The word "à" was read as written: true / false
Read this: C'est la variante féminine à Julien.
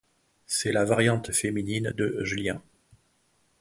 false